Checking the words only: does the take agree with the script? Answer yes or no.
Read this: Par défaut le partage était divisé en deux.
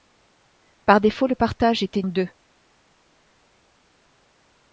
no